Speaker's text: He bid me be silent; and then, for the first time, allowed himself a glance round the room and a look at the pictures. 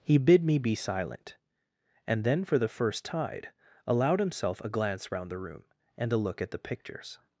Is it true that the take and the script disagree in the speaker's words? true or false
true